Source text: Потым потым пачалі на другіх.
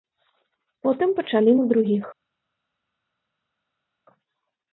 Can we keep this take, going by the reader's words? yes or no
no